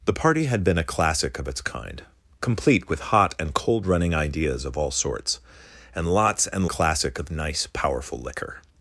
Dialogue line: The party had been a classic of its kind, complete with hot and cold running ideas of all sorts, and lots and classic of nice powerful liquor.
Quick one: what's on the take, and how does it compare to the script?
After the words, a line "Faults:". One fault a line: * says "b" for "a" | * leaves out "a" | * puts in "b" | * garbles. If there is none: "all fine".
The party had been a classic of its kind, complete with hot and cold running ideas of all sorts, and lots and classic of nice powerful liquor.
Faults:
all fine